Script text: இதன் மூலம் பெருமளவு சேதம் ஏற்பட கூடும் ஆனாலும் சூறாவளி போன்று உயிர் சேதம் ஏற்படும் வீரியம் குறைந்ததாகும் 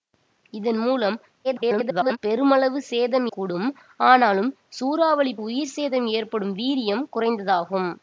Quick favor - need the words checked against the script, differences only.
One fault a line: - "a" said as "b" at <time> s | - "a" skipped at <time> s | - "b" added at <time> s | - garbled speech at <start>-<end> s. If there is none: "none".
- garbled speech at 1.4-2.2 s
- "ஏற்பட" skipped at 3.3 s
- "போன்று" skipped at 5.3 s